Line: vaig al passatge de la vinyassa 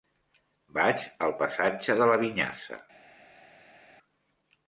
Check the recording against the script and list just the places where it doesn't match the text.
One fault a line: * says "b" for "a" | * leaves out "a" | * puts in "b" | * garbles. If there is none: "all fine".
all fine